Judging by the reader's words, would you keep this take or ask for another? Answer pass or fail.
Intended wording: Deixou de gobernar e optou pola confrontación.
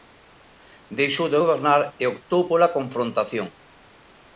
pass